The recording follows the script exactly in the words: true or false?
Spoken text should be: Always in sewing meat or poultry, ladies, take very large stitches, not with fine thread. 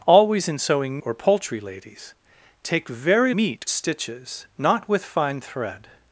false